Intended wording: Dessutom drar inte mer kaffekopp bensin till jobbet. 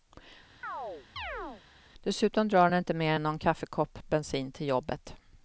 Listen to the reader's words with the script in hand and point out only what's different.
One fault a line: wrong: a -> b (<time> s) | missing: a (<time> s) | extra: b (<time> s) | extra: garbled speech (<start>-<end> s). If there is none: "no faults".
extra: den (2.7 s)
extra: än någon (3.1 s)